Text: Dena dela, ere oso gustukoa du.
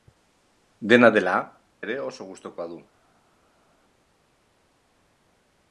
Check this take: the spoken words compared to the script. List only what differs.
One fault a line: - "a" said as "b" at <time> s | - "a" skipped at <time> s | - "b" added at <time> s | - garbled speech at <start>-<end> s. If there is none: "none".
none